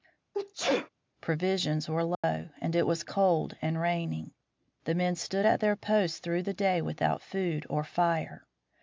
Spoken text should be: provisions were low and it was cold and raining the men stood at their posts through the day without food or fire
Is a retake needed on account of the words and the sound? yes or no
yes